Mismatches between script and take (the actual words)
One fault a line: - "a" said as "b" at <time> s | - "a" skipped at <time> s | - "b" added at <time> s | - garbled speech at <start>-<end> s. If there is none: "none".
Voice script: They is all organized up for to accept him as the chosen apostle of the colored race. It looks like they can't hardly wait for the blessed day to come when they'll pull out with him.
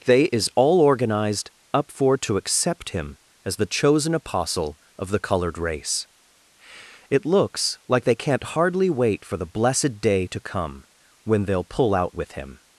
none